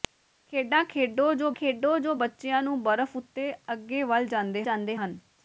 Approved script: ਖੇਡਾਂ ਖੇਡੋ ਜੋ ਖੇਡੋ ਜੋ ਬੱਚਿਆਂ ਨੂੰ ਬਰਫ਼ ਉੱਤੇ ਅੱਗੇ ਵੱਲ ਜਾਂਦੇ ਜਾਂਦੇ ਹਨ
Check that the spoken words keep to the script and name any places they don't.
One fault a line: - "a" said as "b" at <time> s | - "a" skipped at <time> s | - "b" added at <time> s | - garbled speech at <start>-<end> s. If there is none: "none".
none